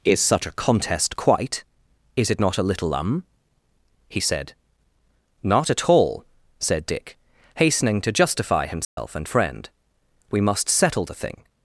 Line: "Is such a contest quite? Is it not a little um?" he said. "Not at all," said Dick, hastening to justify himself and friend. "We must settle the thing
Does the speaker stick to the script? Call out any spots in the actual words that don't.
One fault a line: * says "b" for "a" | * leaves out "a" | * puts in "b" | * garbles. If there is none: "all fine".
all fine